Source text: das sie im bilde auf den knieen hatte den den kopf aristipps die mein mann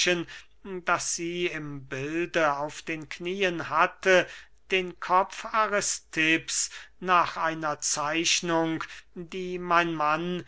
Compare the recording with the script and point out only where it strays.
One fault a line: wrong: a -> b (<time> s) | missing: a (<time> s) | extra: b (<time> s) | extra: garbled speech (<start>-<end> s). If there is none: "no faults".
missing: den (5.0 s)
extra: nach einer zeichnung (7.0 s)